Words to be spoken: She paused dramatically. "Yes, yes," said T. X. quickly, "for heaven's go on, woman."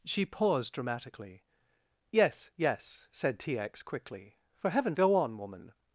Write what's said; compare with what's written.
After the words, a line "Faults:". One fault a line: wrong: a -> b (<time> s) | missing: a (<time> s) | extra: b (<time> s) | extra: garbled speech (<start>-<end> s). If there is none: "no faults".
She paused dramatically. "Yes, yes," said T. X. quickly, "for heaven's go on, woman."
Faults:
no faults